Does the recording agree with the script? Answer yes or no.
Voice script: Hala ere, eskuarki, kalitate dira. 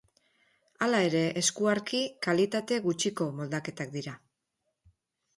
no